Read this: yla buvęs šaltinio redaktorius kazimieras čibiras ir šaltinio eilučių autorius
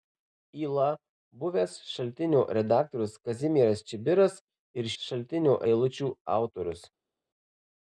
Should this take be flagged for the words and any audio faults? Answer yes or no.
no